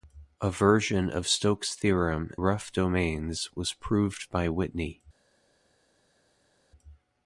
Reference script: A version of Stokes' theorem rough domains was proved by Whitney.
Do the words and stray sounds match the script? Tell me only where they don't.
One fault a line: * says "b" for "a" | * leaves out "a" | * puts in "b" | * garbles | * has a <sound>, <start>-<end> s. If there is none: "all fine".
all fine